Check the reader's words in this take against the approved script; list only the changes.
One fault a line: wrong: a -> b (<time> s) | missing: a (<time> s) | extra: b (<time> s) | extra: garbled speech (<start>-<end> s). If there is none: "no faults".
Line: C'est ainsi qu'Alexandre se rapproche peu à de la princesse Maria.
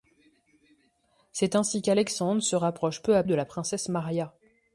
no faults